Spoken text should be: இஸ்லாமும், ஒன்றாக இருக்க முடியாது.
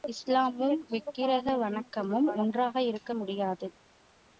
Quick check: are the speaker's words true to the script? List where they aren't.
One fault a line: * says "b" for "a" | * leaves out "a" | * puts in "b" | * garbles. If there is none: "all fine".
* puts in "விக்கிரக வணக்கமும்"